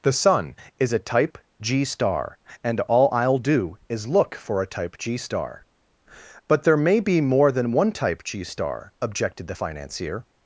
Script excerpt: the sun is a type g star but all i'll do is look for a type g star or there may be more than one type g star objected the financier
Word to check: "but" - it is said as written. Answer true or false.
false